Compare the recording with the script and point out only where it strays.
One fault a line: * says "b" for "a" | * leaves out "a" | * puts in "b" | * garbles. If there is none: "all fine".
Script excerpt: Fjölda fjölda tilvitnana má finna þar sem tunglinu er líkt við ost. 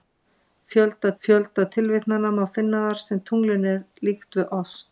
all fine